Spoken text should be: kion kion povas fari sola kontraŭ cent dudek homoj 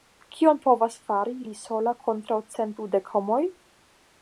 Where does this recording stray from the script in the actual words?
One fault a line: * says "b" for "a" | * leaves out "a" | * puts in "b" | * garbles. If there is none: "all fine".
* leaves out "kion"
* puts in "li"